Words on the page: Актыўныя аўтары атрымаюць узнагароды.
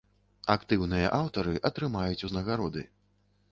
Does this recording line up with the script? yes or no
yes